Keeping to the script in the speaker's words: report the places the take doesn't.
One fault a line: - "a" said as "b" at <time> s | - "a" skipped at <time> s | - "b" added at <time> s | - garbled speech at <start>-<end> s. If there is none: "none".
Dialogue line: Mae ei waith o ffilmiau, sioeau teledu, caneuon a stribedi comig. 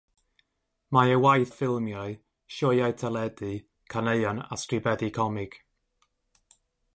none